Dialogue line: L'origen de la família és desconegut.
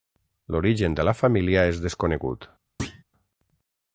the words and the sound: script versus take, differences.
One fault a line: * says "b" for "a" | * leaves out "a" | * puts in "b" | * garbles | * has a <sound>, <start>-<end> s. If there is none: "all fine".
* has a thud, 2.8-3.0 s